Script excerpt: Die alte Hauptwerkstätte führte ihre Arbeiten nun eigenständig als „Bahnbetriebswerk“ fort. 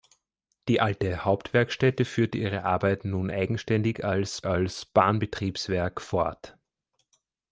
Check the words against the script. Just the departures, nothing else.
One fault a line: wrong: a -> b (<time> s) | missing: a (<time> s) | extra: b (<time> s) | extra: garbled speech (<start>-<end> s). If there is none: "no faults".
extra: als (4.4 s)